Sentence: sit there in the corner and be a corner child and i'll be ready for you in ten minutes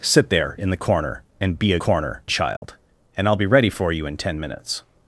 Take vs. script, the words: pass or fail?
pass